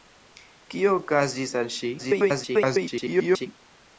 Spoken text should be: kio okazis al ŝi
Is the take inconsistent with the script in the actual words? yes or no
yes